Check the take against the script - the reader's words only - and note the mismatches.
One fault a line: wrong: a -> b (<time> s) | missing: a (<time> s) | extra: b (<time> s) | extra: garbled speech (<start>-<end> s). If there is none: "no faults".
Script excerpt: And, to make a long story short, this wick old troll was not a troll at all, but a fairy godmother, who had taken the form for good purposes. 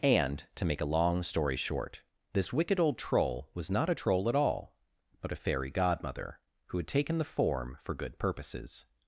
wrong: wick -> wicked (2.5 s)